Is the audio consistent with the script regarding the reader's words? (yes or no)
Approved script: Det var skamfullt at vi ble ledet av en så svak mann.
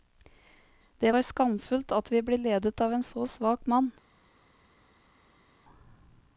yes